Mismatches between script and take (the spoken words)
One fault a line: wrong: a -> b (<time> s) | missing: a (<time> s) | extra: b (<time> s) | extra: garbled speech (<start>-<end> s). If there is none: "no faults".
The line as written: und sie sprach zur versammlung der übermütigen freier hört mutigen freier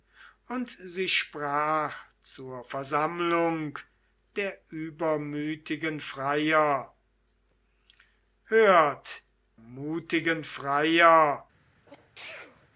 no faults